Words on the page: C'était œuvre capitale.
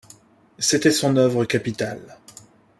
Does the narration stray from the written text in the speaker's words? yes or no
yes